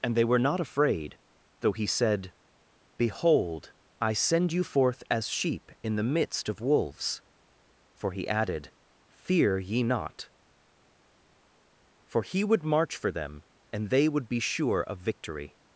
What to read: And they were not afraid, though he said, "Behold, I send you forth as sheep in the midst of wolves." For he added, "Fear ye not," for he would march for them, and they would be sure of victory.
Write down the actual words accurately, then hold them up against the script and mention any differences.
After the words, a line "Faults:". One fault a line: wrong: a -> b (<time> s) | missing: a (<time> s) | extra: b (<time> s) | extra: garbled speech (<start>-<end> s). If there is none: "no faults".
And they were not afraid, though he said, "Behold, I send you forth as sheep in the midst of wolves." For he added, "Fear ye not," for he would march for them, and they would be sure of victory.
Faults:
no faults